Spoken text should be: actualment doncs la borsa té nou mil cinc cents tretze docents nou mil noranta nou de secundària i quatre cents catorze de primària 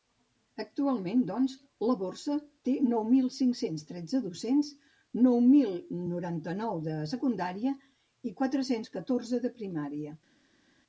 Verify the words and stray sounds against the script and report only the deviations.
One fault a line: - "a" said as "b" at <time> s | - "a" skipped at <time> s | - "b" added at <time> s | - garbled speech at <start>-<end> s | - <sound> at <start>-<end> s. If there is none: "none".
none